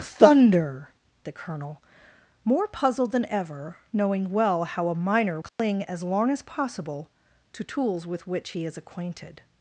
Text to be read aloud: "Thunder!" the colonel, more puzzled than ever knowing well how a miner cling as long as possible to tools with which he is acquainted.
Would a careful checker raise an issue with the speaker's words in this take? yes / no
no